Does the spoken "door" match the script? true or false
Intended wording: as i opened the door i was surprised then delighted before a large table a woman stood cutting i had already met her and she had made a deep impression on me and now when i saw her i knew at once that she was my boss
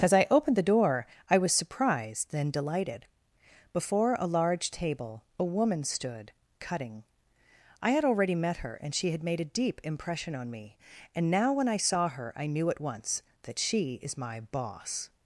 true